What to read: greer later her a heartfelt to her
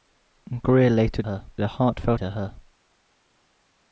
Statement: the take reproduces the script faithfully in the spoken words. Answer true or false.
true